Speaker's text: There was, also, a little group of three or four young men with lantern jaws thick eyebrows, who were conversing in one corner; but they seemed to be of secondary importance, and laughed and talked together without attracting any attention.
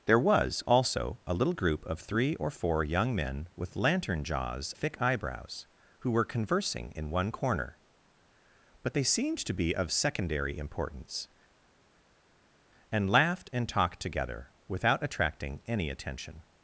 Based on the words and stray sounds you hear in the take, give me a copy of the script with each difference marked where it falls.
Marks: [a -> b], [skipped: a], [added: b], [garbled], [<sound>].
There was, also, a little group of three or four young men with lantern jaws thick eyebrows, who were conversing in one corner; but they seemed to be of secondary importance, and laughed and talked together without attracting any attention.